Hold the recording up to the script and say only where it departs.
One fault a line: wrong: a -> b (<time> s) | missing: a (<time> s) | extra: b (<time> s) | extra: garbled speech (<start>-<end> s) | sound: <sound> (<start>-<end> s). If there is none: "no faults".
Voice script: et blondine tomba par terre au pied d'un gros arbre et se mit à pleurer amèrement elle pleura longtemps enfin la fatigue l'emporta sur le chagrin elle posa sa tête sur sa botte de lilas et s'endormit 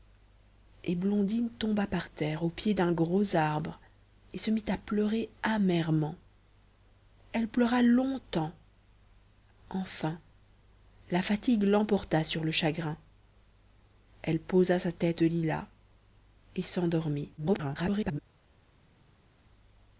missing: sur sa botte (15.2 s)
extra: garbled speech (17.4-18.2 s)